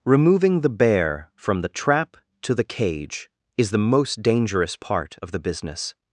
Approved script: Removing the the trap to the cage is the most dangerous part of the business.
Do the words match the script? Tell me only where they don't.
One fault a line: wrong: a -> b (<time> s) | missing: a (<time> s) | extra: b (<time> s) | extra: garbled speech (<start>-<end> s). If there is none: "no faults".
extra: bear from (0.7 s)